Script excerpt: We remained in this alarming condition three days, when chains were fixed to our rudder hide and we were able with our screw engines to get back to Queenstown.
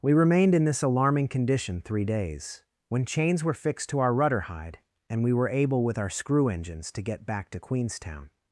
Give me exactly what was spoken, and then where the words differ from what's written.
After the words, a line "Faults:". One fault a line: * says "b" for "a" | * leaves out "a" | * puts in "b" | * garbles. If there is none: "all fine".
We remained in this alarming condition three days, when chains were fixed to our rudder hide and we were able with our screw engines to get back to Queenstown.
Faults:
all fine